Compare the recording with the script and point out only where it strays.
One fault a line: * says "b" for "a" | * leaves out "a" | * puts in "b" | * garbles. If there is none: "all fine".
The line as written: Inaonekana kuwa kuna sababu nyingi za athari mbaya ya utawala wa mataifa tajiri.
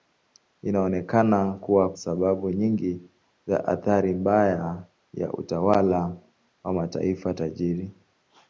* leaves out "kuna"